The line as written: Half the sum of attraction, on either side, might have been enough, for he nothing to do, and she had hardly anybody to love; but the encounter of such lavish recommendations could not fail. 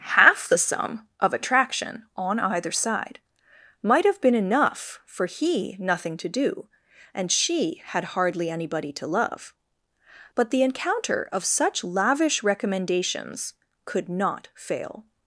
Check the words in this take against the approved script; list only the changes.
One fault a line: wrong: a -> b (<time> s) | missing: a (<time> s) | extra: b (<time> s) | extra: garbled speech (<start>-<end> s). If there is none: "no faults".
no faults